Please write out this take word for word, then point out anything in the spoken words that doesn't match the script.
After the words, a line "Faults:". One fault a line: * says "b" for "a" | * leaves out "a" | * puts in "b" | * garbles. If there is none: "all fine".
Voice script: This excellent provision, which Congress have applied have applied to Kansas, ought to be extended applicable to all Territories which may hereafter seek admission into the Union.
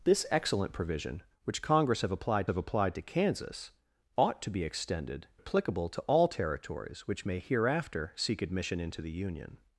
This excellent provision, which Congress have applied have applied to Kansas, ought to be extended applicable to all Territories which may hereafter seek admission into the Union.
Faults:
all fine